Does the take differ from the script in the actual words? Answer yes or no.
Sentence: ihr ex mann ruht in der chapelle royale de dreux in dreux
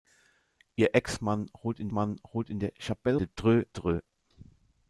yes